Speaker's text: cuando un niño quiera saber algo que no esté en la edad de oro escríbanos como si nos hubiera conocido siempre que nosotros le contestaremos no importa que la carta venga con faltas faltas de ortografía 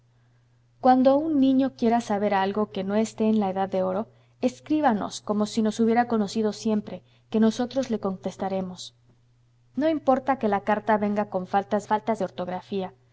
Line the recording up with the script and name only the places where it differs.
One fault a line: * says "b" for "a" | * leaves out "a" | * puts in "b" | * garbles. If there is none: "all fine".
all fine